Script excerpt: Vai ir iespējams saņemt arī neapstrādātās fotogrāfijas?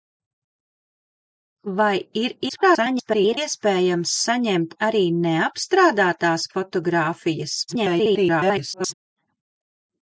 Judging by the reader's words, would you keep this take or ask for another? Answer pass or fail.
fail